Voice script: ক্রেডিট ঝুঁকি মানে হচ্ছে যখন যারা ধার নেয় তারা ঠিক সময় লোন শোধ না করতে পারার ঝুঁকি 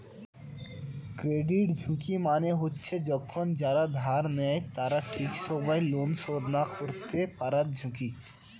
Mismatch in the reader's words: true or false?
false